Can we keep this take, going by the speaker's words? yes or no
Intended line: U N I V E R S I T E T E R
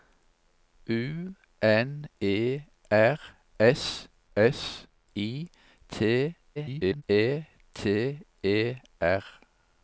no